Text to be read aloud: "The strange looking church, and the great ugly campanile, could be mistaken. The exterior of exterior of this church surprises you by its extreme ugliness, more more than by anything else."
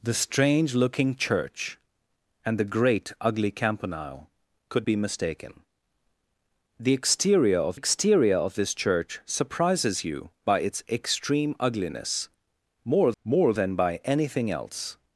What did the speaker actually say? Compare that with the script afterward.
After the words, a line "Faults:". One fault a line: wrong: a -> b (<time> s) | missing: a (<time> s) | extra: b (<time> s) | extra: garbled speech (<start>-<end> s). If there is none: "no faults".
"The strange looking church, and the great ugly campanile, could be mistaken. The exterior of exterior of this church surprises you by its extreme ugliness, more more than by anything else."
Faults:
no faults